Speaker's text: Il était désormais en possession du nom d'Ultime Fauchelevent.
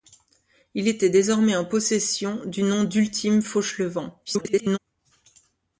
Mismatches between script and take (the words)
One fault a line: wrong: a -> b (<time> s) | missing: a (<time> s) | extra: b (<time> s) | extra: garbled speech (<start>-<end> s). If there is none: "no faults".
extra: garbled speech (4.3-4.8 s)